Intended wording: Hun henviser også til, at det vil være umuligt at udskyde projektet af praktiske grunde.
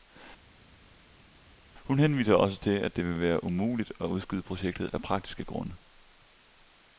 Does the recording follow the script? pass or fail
pass